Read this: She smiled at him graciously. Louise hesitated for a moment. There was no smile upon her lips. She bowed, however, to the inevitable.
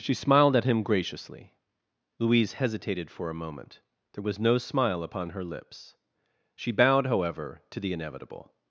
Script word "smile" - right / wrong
right